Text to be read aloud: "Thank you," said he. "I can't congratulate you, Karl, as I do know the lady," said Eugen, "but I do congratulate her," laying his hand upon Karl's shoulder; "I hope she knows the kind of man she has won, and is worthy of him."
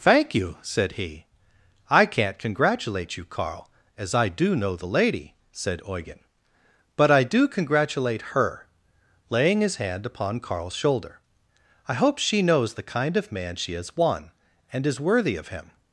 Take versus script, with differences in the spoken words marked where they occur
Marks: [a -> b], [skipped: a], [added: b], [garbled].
"Thank you," said he. "I can't congratulate you, Karl, as I do know the lady," said Eugen, "but I do congratulate her," laying his hand upon Karl's shoulder; "I hope she knows the kind of man she has won, and is worthy of him."